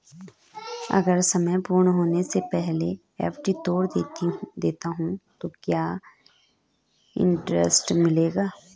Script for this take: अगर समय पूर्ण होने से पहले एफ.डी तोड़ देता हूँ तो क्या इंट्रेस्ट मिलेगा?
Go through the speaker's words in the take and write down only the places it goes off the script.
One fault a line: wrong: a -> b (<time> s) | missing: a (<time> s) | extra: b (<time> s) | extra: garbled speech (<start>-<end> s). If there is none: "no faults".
no faults